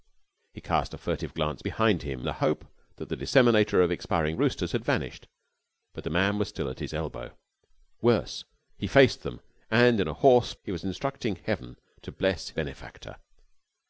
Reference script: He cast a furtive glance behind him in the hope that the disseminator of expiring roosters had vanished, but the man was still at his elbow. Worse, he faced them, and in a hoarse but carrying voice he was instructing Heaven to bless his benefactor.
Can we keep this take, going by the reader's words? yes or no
no